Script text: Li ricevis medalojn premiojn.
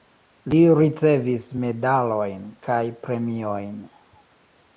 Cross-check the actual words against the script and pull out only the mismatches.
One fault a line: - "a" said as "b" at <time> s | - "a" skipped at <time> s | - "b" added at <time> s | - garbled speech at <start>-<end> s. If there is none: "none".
- "kaj" added at 2.7 s